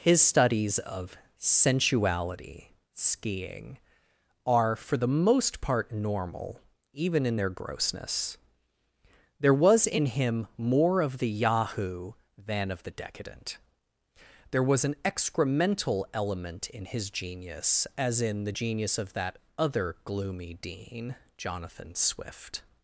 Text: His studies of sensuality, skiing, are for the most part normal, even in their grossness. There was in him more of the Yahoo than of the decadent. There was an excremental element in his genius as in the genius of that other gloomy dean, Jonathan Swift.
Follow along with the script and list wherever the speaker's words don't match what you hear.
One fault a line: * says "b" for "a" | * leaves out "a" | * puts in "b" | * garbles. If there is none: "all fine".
all fine